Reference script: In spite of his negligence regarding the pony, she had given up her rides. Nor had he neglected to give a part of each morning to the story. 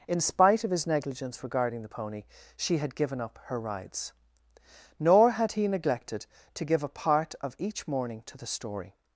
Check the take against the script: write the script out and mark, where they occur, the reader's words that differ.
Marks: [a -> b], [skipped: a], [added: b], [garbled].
In spite of his negligence regarding the pony, she had given up her rides. Nor had he neglected to give a part of each morning to the story.